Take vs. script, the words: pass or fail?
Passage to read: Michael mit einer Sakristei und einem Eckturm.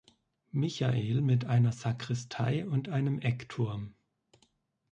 pass